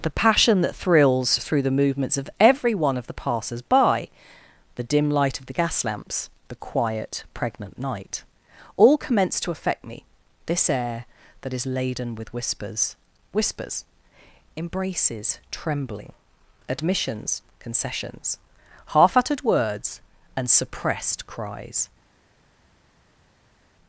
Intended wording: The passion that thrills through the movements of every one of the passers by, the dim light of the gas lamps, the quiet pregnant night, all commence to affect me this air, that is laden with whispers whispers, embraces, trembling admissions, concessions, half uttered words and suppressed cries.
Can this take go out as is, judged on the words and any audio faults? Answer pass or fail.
pass